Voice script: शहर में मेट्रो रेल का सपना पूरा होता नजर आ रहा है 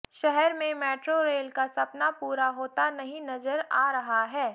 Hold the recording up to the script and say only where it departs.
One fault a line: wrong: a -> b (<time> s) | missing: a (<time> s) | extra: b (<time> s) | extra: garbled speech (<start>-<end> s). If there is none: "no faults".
extra: नहीं (2.9 s)